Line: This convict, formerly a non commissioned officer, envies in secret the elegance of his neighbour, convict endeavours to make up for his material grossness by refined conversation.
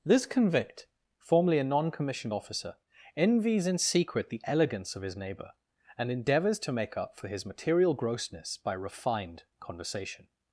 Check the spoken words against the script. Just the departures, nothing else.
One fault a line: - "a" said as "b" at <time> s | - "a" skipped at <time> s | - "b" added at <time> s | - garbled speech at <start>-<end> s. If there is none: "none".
- "convict" said as "and" at 6.0 s